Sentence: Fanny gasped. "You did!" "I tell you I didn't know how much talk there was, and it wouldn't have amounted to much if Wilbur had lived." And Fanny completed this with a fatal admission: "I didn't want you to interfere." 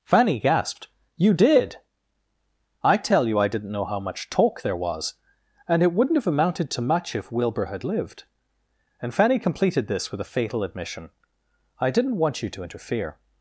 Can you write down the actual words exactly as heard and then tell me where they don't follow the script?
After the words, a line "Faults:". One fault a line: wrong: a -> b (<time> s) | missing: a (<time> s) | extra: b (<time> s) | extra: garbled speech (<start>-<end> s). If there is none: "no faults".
Fanny gasped. "You did!" "I tell you I didn't know how much talk there was, and it wouldn't have amounted to much if Wilbur had lived." And Fanny completed this with a fatal admission: "I didn't want you to interfere."
Faults:
no faults